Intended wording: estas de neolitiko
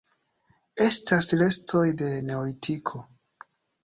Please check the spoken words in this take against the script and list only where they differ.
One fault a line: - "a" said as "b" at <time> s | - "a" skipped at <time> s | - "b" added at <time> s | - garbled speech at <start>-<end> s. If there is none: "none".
- "restoj" added at 1.4 s